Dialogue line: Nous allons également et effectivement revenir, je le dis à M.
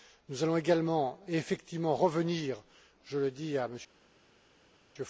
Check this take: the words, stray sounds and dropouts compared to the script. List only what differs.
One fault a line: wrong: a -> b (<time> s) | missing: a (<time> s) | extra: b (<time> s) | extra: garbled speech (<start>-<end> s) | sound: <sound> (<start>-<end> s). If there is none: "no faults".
no faults